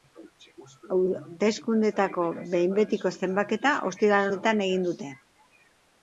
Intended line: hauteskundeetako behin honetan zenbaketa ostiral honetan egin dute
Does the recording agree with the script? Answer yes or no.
no